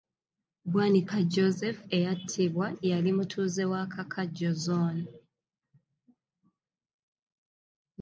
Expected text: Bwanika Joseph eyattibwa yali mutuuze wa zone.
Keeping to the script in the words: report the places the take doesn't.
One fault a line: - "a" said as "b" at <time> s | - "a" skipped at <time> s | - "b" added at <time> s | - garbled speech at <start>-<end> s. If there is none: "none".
- "kakajjo" added at 3.9 s